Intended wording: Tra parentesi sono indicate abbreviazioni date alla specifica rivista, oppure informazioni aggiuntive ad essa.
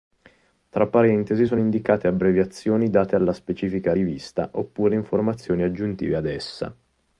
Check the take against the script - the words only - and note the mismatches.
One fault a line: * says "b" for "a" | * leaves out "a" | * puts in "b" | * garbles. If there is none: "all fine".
all fine